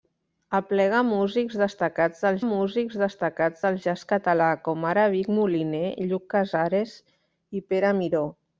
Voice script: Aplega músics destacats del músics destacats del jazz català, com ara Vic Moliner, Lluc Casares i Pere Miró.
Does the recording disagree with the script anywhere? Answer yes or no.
no